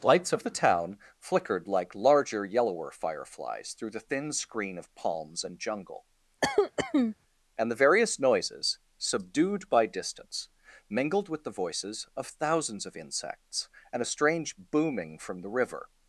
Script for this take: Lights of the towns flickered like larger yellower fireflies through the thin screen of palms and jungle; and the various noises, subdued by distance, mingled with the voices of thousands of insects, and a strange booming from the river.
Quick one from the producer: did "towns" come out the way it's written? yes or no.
no